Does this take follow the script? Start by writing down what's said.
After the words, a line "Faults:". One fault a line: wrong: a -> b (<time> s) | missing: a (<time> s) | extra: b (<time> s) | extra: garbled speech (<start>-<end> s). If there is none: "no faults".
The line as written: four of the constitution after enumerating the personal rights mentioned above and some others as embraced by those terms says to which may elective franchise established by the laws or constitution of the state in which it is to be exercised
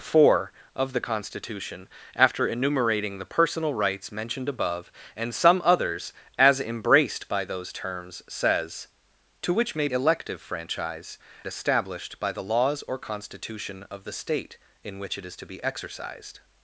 four of the constitution after enumerating the personal rights mentioned above and some others as embraced by those terms says to which may elective franchise established by the laws or constitution of the state in which it is to be exercised
Faults:
no faults